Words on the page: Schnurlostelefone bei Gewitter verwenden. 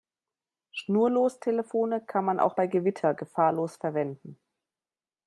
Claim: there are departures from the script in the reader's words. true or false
true